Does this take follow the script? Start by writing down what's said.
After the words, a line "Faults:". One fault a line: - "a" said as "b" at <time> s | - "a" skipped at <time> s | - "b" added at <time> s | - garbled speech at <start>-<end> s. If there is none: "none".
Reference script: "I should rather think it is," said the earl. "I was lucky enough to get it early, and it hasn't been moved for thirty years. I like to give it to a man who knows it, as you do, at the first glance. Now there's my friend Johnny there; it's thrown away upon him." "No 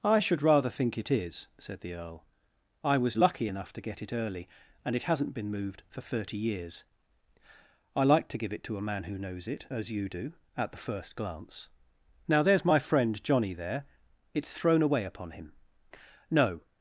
"I should rather think it is," said the earl. "I was lucky enough to get it early, and it hasn't been moved for thirty years. I like to give it to a man who knows it, as you do, at the first glance. Now there's my friend Johnny there; it's thrown away upon him." "No
Faults:
none